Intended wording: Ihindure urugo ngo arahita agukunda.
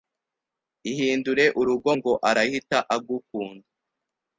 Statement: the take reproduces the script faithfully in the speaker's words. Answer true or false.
true